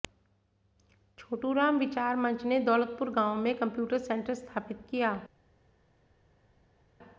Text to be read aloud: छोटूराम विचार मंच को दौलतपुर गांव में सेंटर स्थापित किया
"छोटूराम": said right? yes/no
yes